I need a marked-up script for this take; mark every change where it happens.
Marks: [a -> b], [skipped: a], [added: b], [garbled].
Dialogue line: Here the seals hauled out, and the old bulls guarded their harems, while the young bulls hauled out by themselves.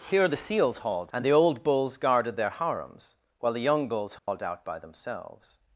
Here the seals hauled [skipped: out,] and the old bulls guarded their harems, while the young bulls hauled out by themselves.